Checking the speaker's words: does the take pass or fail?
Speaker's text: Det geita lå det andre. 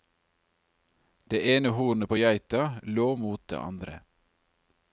fail